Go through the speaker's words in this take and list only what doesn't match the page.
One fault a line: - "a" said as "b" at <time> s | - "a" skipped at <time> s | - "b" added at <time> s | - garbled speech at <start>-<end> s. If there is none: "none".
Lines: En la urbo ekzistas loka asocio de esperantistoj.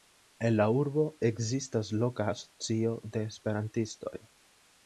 none